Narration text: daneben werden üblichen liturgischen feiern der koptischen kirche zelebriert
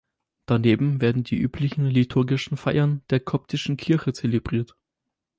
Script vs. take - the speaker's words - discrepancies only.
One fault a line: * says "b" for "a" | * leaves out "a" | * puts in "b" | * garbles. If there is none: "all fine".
* puts in "die"